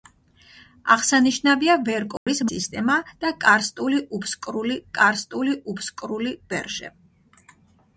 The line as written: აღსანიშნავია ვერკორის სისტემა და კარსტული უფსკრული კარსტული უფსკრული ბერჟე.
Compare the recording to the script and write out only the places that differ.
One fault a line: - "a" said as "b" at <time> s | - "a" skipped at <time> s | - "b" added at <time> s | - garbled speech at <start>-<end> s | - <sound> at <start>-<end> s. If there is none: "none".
- dropout at 2.2-2.3 s